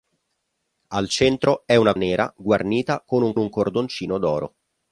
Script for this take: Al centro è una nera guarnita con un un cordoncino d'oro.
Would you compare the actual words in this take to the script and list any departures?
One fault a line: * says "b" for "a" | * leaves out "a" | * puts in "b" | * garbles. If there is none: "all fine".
all fine